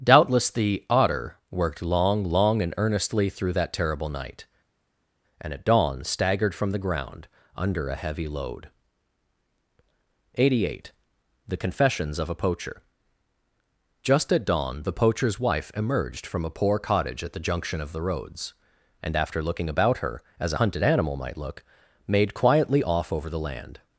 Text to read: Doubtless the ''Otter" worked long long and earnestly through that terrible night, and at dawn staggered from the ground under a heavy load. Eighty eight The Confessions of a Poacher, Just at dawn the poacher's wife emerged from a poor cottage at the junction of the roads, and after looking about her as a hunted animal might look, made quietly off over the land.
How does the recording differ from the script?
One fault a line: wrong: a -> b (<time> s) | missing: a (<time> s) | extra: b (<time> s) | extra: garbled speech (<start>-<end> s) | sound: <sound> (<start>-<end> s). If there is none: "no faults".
no faults